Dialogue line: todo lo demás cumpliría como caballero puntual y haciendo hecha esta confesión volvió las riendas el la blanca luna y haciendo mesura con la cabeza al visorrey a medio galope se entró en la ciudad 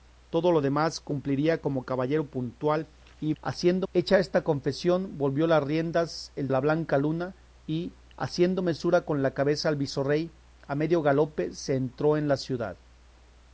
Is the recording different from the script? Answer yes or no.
no